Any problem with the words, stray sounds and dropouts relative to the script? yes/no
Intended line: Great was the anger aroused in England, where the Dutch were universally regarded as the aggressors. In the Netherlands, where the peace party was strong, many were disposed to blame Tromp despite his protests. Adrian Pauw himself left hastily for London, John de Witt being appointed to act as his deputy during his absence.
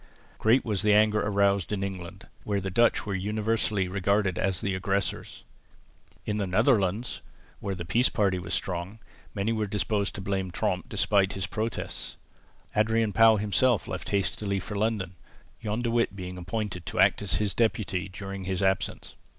no